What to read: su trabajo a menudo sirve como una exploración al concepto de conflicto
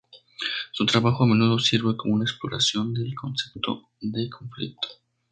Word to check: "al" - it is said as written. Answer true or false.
false